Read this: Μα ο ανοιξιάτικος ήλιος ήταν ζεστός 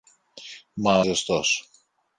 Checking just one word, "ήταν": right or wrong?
wrong